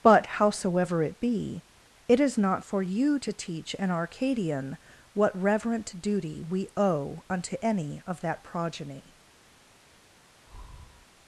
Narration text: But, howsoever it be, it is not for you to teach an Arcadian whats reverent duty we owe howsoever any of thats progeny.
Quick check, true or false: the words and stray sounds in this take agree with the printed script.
false